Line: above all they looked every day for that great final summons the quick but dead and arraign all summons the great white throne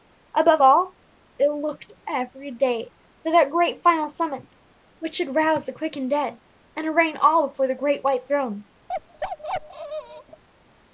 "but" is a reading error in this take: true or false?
true